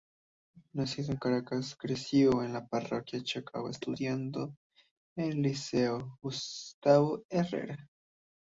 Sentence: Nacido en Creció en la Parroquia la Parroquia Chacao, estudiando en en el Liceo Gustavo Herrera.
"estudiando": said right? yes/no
yes